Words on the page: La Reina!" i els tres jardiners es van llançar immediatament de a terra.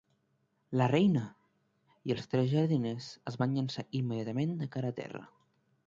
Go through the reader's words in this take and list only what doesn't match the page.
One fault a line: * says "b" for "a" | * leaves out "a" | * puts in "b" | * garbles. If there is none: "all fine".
* puts in "cara"